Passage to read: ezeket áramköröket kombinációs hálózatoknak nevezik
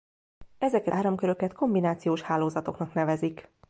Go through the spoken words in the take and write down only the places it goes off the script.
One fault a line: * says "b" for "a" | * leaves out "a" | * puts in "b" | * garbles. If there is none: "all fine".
all fine